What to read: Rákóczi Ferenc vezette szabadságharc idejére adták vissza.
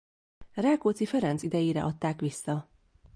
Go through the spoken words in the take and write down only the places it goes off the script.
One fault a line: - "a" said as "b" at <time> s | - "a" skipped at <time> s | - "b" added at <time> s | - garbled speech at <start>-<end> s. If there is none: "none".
- "vezette szabadságharc" skipped at 1.4 s